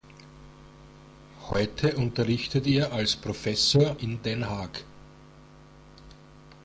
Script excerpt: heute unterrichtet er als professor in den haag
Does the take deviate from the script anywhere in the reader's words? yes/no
no